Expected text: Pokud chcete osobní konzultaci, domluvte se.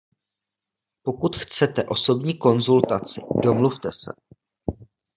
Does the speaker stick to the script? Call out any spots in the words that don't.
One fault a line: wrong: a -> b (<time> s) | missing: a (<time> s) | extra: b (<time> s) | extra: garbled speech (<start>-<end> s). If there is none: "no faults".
no faults